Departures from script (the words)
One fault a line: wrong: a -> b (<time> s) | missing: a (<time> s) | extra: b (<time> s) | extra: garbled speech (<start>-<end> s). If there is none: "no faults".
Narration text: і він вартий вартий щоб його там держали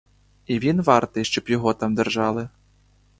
missing: вартий (1.2 s)